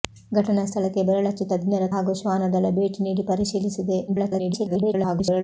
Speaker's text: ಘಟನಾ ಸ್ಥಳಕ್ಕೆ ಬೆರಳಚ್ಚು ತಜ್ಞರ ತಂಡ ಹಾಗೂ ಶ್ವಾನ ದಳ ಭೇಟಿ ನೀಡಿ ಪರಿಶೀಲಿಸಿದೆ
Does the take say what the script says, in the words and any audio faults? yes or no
no